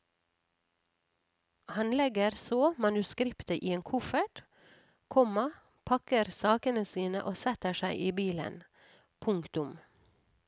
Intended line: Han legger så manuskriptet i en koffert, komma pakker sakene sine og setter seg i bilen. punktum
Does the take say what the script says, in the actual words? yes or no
yes